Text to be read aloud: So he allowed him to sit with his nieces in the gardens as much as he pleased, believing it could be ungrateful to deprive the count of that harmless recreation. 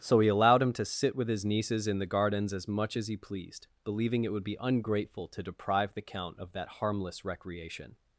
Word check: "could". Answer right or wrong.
wrong